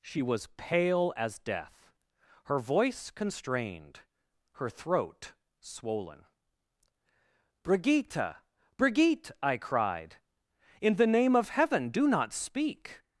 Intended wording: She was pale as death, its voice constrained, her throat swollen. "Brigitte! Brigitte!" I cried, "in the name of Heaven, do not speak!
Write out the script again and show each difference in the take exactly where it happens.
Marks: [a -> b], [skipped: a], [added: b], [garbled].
She was pale as death, [its -> her] voice constrained, her throat swollen. "Brigitte! Brigitte!" I cried, "in the name of Heaven, do not speak!